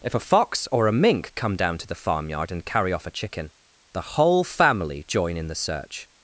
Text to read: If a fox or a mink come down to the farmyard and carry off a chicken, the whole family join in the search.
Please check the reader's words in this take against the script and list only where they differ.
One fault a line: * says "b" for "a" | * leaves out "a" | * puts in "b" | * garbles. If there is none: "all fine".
all fine